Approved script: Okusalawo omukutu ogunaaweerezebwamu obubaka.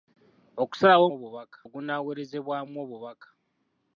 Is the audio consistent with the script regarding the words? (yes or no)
no